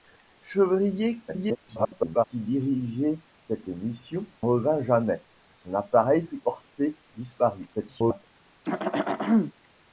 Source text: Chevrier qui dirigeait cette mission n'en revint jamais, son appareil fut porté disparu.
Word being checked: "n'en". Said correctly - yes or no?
no